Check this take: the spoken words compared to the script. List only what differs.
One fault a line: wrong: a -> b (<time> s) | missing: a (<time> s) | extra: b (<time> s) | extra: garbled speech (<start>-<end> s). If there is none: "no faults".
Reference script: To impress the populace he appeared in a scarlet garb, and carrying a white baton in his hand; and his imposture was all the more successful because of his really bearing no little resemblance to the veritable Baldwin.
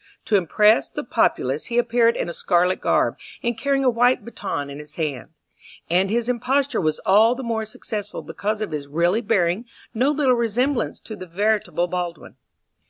no faults